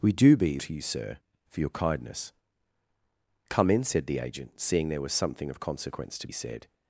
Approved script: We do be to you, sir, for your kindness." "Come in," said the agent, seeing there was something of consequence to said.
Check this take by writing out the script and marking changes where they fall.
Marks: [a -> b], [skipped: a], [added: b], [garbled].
We do be to you, sir, for your kindness." "Come in," said the agent, seeing there was something of consequence to said.